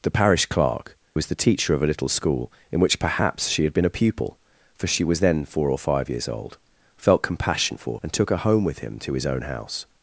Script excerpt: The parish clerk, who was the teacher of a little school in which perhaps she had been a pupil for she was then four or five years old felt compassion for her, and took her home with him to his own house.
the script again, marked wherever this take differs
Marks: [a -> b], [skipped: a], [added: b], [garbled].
The parish clerk, [skipped: who] was the teacher of a little school in which perhaps she had been a pupil for she was then four or five years old felt compassion for [skipped: her,] and took her home with him to his own house.